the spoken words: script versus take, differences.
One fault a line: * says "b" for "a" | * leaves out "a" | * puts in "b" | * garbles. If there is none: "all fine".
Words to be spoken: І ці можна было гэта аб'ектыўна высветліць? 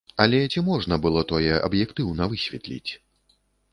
* says "Але" for "І"
* says "тое" for "гэта"